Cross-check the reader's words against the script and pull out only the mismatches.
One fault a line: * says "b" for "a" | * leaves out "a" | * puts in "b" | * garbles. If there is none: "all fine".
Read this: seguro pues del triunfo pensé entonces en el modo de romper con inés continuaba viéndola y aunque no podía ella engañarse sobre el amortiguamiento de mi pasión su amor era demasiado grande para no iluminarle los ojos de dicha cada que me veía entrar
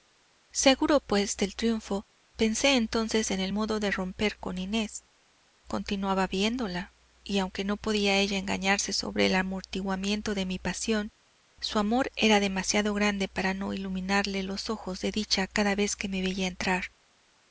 * puts in "vez"